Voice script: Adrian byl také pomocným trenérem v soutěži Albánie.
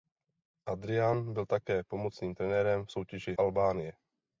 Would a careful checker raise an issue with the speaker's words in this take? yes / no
no